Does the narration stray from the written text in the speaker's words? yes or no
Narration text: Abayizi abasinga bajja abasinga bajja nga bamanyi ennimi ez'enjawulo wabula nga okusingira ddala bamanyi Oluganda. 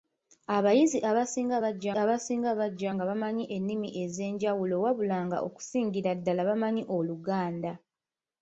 no